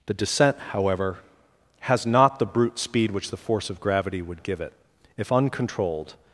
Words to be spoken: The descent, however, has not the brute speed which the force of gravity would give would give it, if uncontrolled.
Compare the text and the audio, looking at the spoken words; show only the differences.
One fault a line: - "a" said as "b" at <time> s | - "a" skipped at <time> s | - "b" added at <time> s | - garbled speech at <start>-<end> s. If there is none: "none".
- "would give" skipped at 4.6 s